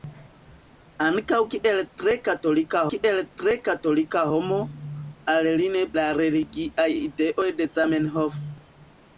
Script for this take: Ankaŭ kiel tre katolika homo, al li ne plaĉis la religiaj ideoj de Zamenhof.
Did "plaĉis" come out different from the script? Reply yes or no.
yes